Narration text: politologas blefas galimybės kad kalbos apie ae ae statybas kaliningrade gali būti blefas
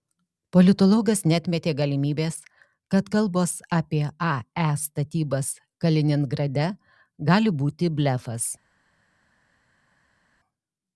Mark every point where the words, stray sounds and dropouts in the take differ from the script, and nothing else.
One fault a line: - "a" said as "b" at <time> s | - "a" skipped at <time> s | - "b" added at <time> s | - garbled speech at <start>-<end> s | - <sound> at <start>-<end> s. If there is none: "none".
- "blefas" said as "neatmetė" at 1.3 s
- "ae" skipped at 4.7 s